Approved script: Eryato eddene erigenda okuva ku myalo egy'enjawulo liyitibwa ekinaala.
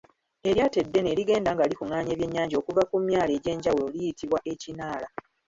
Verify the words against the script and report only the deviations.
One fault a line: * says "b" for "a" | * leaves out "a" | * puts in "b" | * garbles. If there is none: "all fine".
* puts in "nga likungaanya ebyennyanja"